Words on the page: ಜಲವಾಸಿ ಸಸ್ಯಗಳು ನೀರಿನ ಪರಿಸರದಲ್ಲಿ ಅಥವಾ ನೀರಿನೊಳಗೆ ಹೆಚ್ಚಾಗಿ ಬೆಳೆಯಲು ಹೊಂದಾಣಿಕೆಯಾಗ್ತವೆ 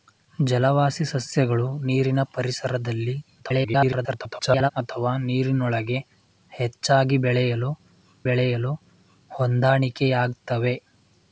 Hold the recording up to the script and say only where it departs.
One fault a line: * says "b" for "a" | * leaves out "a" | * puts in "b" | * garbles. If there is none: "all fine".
* garbles
* puts in "ಬೆಳೆಯಲು"